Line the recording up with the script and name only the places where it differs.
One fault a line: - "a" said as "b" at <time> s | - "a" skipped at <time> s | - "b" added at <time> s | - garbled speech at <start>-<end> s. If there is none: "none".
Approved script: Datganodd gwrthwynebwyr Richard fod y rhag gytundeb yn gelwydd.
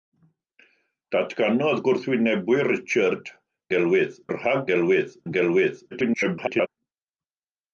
- "fod" said as "gelwydd" at 3.8 s
- "gytundeb" said as "gelwydd" at 4.7 s
- garbled speech at 5.9-6.7 s